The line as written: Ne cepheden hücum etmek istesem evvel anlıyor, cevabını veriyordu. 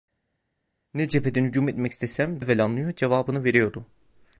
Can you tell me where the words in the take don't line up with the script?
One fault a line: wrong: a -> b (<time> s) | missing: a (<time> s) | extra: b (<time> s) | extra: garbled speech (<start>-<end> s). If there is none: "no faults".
no faults